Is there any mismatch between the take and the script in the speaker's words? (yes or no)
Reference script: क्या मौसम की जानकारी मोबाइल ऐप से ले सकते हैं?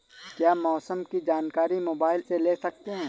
yes